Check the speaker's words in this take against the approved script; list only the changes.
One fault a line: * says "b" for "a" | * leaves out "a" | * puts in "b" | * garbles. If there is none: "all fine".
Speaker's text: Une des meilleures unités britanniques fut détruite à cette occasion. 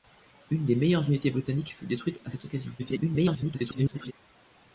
* garbles